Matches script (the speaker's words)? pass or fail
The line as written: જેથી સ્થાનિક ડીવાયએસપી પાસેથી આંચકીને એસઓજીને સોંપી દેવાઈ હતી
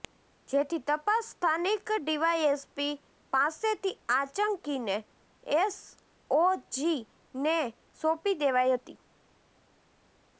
fail